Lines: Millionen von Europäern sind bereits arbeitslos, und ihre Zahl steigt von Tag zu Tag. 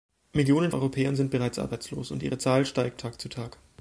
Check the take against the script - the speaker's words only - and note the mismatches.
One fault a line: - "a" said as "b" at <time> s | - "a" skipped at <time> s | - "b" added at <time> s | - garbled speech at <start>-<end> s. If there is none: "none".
- "von" skipped at 0.7 s
- "von" skipped at 3.0 s